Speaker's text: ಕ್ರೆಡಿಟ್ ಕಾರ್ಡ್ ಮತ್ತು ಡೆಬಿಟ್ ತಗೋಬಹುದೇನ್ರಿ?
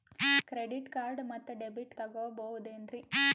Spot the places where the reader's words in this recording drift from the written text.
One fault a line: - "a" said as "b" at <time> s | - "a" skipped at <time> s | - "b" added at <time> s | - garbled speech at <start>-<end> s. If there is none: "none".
none